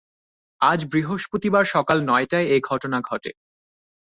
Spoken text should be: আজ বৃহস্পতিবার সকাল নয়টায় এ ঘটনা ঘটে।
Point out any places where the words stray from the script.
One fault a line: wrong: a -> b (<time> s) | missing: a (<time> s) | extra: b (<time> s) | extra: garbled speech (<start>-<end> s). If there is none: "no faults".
no faults